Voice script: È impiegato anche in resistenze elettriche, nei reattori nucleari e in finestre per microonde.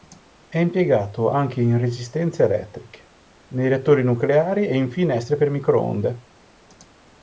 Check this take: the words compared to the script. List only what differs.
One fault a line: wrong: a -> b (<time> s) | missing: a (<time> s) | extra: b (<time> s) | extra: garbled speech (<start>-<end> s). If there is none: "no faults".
no faults